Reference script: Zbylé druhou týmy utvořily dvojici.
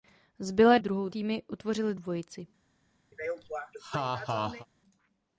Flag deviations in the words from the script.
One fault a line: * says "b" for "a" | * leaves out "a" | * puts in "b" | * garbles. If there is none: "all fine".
all fine